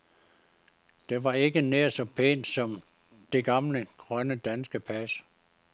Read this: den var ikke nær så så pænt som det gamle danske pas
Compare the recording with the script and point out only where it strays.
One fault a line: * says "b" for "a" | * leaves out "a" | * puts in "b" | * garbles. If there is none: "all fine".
* says "det" for "den"
* leaves out "så"
* puts in "grønne"